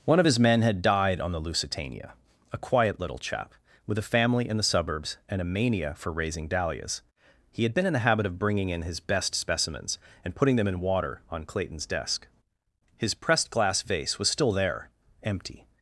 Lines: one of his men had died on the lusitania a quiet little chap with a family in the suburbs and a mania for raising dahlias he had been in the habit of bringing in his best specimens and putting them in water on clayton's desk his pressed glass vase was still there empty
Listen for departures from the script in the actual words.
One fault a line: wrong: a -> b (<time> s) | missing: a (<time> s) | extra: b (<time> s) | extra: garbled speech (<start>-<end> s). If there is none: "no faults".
no faults